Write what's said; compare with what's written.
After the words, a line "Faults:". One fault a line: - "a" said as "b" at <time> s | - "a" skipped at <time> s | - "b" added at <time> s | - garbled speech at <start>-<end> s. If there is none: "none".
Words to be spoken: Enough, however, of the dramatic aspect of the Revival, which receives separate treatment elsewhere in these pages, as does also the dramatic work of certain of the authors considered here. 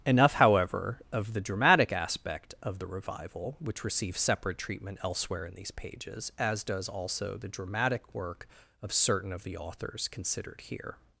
Enough, however, of the dramatic aspect of the Revival, which receives separate treatment elsewhere in these pages, as does also the dramatic work of certain of the authors considered here.
Faults:
none